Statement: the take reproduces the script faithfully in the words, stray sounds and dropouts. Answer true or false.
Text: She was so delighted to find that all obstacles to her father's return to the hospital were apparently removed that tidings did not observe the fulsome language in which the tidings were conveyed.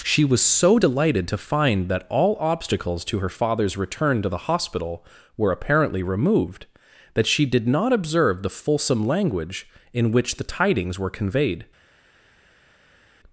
false